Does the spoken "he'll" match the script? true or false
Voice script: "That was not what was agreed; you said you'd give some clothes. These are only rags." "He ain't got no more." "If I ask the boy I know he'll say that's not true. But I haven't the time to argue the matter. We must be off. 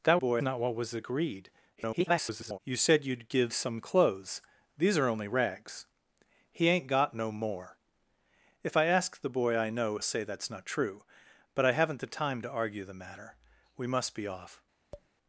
false